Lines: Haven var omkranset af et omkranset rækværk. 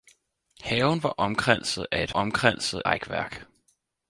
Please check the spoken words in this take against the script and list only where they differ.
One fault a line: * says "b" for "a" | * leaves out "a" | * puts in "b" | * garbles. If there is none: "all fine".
all fine